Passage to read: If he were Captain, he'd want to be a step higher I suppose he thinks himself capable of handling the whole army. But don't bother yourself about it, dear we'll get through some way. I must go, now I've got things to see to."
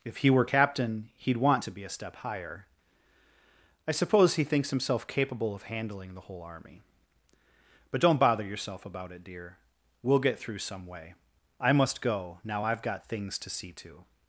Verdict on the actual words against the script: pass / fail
pass